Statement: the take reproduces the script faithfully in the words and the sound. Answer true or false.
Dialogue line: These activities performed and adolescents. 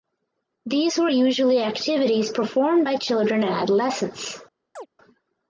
false